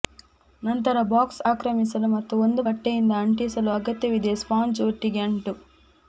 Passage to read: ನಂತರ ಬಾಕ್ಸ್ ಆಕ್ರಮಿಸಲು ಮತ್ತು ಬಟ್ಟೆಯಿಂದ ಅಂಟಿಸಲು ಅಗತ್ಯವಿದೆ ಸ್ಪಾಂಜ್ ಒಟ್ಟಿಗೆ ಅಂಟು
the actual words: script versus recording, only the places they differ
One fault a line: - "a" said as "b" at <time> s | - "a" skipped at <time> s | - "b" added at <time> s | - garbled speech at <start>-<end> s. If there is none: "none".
- "ಒಂದು" added at 2.4 s